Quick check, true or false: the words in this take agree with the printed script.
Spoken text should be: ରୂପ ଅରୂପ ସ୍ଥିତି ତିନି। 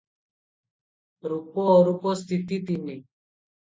true